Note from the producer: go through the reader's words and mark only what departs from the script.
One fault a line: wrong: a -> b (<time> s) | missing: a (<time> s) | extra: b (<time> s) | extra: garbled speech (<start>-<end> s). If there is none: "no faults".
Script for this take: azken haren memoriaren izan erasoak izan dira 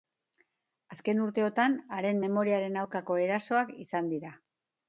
extra: urteotan (1.2 s)
wrong: izan -> aurkako (2.8 s)